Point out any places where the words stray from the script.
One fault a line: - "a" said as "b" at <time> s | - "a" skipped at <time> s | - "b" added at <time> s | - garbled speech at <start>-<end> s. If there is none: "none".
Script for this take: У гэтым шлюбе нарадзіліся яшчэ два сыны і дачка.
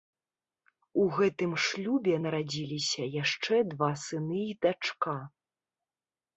none